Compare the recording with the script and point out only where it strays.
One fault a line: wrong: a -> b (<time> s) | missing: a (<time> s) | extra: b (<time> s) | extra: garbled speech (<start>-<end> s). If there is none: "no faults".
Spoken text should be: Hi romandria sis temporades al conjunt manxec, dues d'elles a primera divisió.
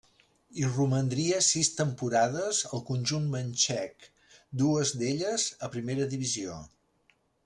no faults